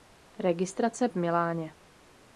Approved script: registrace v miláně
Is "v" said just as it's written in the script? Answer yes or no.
yes